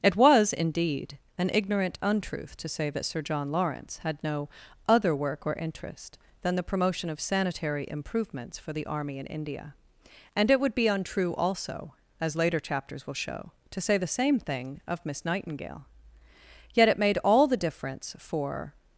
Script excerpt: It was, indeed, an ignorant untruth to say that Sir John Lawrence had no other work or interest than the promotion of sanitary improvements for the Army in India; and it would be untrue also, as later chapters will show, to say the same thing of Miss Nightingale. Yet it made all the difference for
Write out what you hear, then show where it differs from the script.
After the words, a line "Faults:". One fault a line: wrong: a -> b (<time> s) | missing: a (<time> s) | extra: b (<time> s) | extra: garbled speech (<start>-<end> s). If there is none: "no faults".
It was, indeed, an ignorant untruth to say that Sir John Lawrence had no other work or interest than the promotion of sanitary improvements for the Army in India; and it would be untrue also, as later chapters will show, to say the same thing of Miss Nightingale. Yet it made all the difference for
Faults:
no faults